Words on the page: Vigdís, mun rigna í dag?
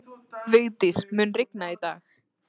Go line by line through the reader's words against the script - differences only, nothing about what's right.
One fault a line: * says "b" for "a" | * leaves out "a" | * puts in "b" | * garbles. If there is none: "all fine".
all fine